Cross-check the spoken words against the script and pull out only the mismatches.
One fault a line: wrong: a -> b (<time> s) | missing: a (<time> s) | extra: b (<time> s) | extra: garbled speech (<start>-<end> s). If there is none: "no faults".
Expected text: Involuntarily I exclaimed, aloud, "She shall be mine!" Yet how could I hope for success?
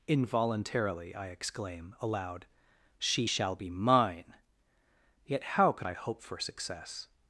wrong: exclaimed -> exclaim (1.3 s)